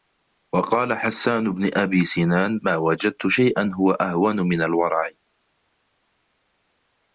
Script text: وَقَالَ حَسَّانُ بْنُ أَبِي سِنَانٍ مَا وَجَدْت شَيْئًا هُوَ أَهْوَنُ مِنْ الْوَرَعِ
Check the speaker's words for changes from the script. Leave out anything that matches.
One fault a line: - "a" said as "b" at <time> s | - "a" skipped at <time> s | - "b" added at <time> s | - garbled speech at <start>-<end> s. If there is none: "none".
none